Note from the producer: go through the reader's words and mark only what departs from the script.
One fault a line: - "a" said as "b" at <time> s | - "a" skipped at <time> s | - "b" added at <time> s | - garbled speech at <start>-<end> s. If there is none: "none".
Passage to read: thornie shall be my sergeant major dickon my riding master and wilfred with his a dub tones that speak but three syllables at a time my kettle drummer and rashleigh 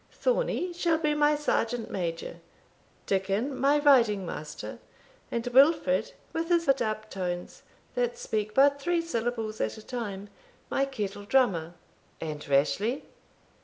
none